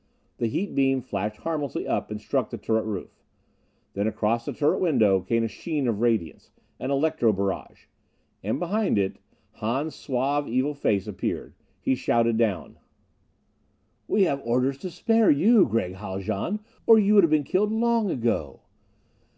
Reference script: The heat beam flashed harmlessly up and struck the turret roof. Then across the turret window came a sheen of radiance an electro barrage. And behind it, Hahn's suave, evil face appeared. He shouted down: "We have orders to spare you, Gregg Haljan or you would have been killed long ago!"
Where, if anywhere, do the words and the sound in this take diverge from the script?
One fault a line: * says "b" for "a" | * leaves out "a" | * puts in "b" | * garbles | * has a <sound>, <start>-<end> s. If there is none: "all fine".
all fine